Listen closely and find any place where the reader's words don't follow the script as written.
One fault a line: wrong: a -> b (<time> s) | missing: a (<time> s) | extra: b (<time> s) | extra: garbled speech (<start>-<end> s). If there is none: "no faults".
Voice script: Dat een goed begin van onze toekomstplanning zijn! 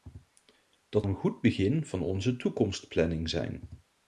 no faults